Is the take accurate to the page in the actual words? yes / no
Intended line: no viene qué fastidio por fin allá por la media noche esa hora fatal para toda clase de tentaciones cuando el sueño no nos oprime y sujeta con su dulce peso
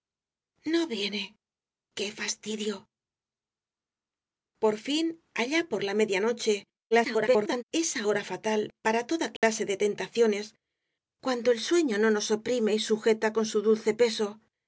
no